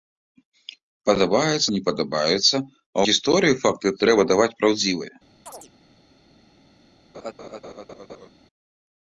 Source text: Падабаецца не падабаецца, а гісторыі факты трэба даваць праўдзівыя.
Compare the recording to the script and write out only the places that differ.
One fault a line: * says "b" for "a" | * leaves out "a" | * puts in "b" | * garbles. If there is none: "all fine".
all fine